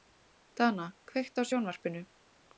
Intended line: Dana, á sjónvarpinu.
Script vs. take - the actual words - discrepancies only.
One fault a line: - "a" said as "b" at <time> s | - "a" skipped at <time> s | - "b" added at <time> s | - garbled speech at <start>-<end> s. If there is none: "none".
- "kveiktu" added at 1.1 s